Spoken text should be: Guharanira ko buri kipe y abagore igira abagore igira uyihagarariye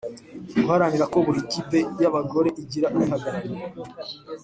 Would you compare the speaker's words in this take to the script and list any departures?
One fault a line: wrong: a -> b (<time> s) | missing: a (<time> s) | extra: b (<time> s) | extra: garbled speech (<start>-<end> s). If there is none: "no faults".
missing: abagore igira (2.9 s)